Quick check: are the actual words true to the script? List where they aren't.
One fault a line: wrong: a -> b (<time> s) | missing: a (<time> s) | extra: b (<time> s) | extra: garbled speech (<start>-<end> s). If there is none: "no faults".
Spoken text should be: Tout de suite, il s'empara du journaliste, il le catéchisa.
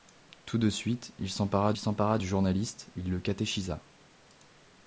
extra: s'empara (1.8 s)